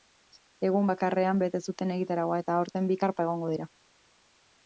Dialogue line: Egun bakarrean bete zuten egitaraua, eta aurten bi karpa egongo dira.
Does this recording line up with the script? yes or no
yes